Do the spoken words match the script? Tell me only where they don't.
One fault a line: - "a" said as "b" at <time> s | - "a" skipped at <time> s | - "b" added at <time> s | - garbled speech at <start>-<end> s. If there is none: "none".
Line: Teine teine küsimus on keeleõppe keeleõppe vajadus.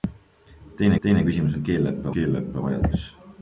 none